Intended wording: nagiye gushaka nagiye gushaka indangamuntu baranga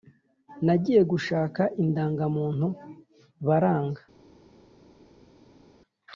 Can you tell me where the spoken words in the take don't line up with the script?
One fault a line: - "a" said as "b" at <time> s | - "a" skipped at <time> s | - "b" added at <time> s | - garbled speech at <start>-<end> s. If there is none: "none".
- "nagiye gushaka" skipped at 1.6 s